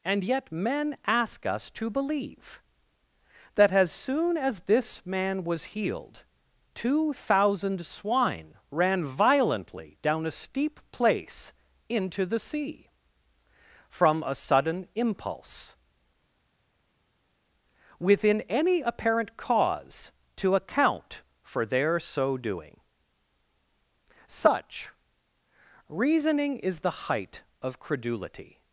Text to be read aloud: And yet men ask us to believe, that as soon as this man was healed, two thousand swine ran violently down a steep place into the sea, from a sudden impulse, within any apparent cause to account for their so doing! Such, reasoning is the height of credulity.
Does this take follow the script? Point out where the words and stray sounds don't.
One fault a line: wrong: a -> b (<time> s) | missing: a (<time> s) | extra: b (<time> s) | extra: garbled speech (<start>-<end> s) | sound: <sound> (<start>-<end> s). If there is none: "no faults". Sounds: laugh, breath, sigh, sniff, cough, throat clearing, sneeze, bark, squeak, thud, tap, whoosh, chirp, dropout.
no faults